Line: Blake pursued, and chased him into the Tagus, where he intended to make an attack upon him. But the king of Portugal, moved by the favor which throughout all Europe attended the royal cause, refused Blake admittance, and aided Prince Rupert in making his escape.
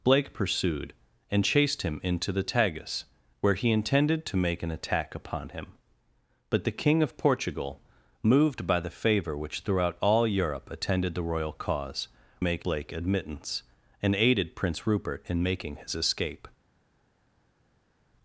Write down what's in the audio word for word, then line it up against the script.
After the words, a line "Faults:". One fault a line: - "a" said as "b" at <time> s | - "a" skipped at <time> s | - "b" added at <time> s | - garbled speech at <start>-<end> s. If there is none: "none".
Blake pursued, and chased him into the Tagus, where he intended to make an attack upon him. But the king of Portugal, moved by the favor which throughout all Europe attended the royal cause, make Blake admittance, and aided Prince Rupert in making his escape.
Faults:
- "refused" said as "make" at 12.4 s